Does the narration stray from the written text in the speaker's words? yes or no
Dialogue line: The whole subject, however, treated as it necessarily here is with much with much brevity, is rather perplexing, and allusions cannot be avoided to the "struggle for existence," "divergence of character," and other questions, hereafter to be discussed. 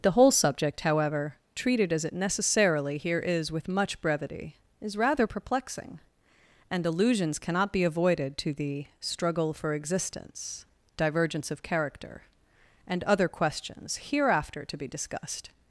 yes